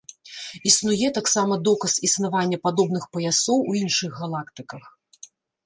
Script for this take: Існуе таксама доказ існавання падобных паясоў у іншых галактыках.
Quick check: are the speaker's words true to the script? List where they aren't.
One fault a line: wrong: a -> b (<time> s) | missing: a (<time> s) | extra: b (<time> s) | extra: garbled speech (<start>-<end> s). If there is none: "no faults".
no faults